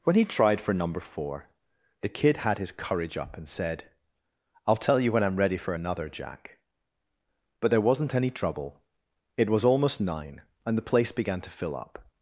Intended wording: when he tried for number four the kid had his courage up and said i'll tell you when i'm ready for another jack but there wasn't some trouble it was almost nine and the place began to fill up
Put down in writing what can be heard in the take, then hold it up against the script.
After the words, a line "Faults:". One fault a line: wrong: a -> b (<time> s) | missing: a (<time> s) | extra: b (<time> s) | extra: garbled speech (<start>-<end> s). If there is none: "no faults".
when he tried for number four the kid had his courage up and said i'll tell you when i'm ready for another jack but there wasn't any trouble it was almost nine and the place began to fill up
Faults:
wrong: some -> any (8.1 s)